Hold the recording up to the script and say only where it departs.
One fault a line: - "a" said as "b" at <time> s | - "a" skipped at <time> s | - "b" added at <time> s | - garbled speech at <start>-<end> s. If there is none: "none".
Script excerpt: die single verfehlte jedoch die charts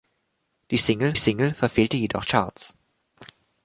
- "single" added at 1.2 s
- "die" skipped at 2.2 s